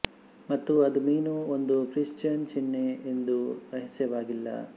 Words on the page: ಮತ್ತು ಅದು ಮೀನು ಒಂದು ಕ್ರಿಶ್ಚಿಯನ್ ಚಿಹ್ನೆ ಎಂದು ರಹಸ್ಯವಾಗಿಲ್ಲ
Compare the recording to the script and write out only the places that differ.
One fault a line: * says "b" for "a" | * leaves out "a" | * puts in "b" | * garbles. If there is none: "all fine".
all fine